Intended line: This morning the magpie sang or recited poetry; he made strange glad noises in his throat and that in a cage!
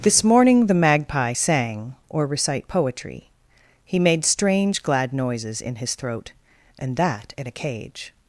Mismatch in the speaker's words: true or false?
true